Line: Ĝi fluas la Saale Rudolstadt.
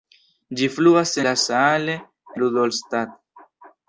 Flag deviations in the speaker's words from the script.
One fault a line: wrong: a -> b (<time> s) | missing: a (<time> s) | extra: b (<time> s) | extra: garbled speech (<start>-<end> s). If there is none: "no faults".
no faults